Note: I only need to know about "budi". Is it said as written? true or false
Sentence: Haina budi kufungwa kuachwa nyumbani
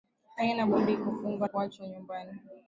true